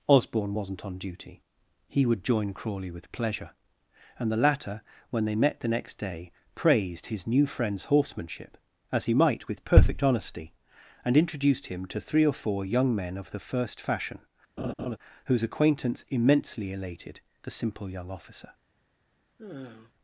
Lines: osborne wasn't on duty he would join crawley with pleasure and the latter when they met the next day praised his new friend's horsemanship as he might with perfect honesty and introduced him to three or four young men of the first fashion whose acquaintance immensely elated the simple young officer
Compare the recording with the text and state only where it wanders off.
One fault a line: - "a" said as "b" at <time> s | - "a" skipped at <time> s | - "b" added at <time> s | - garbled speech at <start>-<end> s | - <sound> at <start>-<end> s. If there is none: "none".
- laugh at 14.6-15.0 s
- sigh at 19.4-19.9 s